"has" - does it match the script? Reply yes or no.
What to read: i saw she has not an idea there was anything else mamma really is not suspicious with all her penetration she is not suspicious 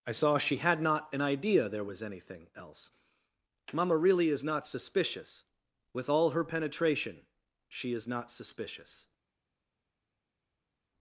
no